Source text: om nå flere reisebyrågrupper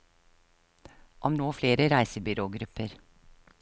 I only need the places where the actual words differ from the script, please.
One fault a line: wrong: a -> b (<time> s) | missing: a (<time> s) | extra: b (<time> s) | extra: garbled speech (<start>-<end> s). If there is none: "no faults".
no faults